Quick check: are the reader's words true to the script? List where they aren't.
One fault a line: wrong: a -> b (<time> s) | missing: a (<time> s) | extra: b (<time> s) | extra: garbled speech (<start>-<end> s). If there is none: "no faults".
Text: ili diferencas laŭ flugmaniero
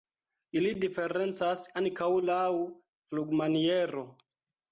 extra: ankaŭ (1.8 s)